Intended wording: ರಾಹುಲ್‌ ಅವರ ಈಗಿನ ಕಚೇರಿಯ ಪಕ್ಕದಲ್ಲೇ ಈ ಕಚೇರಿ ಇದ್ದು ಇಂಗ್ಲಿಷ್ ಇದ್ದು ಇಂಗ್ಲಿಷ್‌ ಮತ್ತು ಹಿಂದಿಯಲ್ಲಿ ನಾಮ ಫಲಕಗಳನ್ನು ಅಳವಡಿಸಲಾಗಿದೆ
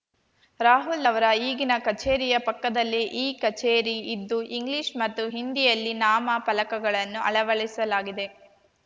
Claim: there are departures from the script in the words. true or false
true